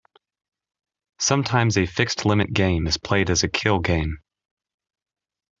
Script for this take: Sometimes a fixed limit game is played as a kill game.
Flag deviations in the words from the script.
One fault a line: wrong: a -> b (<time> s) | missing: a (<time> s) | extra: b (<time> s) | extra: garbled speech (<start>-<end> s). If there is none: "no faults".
no faults